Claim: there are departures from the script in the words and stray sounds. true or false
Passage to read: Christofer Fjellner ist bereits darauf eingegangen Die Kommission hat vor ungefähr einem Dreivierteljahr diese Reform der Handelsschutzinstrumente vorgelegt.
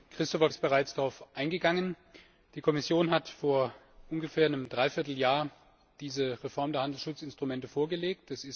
true